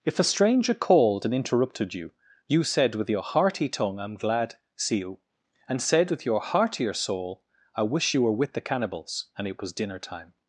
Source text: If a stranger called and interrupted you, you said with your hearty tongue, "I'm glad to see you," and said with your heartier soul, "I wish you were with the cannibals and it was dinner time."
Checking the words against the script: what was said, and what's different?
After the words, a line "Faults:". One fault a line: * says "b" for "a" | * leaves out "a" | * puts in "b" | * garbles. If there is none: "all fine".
If a stranger called and interrupted you, you said with your hearty tongue, "I'm glad see you," and said with your heartier soul, "I wish you were with the cannibals and it was dinner time."
Faults:
* leaves out "to"